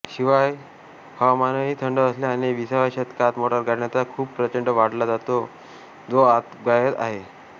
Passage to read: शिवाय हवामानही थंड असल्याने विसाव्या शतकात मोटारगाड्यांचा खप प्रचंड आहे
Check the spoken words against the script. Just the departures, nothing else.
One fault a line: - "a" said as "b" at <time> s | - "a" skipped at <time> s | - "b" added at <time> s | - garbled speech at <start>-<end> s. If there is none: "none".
- "वाढला जो आजतागायत" added at 4.7 s